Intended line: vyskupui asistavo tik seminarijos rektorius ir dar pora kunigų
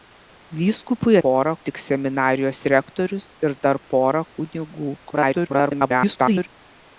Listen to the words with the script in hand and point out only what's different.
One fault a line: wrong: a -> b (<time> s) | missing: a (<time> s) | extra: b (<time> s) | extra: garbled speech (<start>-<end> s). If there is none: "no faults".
wrong: asistavo -> pora (1.3 s)
extra: garbled speech (5.0-6.5 s)